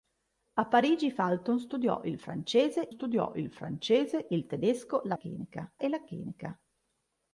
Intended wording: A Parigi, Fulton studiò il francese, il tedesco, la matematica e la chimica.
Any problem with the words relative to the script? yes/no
yes